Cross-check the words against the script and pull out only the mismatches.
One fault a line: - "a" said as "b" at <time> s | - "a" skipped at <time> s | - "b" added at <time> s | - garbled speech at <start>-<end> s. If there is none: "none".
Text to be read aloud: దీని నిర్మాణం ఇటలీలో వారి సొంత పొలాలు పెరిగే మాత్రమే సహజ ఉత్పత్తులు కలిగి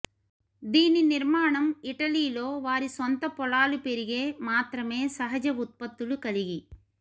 none